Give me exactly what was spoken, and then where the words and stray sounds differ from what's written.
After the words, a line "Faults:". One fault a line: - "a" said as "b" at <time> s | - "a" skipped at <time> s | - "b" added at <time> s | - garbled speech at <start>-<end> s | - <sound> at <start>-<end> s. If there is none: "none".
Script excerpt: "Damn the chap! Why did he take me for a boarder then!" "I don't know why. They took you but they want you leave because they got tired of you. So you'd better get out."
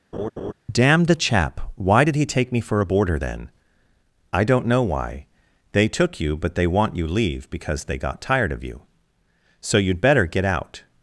"Damn the chap! Why did he take me for a boarder then!" "I don't know why. They took you but they want you leave because they got tired of you. So you'd better get out."
Faults:
- laugh at 0.1-0.5 s